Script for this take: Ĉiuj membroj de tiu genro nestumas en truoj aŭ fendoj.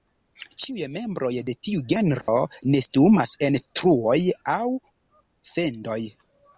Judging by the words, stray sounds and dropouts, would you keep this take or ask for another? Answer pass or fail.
fail